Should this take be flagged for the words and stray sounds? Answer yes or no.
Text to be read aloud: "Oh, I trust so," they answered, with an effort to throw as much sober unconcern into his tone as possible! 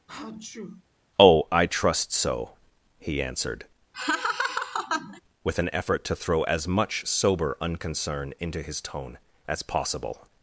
yes